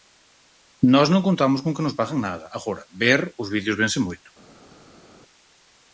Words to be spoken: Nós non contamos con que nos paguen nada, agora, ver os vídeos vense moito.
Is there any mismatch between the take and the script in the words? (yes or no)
no